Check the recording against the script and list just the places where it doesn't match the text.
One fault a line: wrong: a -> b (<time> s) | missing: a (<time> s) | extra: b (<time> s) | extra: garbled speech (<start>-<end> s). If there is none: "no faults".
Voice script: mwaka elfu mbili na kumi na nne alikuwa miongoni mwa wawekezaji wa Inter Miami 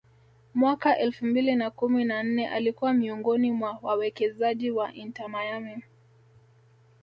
no faults